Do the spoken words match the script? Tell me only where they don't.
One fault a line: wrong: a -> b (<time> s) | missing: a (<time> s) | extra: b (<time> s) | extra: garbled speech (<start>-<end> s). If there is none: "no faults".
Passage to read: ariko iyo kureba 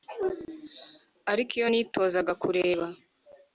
extra: nitozaga (1.7 s)